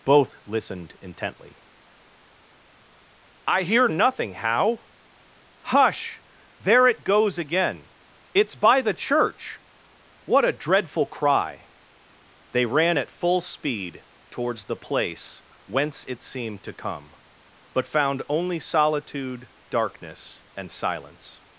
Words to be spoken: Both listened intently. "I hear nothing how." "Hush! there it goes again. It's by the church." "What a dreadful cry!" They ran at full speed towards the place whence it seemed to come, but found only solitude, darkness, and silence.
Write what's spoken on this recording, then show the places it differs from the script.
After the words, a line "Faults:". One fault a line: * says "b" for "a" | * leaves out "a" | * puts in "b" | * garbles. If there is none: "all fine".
Both listened intently. "I hear nothing how." "Hush! there it goes again. It's by the church." "What a dreadful cry!" They ran at full speed towards the place whence it seemed to come, but found only solitude, darkness, and silence.
Faults:
all fine